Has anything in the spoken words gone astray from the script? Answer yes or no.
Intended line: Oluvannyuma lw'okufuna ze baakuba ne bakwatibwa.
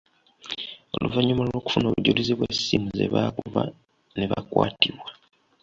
yes